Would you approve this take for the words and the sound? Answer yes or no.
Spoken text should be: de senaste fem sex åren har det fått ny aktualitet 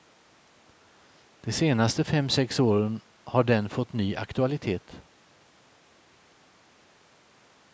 no